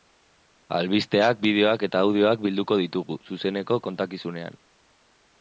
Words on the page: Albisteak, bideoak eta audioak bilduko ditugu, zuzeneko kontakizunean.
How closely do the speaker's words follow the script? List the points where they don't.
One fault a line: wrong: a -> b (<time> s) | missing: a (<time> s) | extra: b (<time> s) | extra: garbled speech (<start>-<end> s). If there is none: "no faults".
no faults